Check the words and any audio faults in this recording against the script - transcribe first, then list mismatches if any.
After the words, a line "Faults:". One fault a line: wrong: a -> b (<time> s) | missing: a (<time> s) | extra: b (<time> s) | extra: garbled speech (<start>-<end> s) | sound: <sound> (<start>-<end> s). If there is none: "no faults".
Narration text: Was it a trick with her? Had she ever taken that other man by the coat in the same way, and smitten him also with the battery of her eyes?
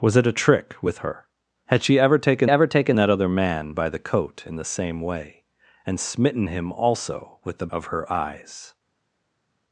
Was it a trick with her? Had she ever taken ever taken that other man by the coat in the same way, and smitten him also with the of her eyes?
Faults:
extra: ever taken (2.5 s)
missing: battery (7.7 s)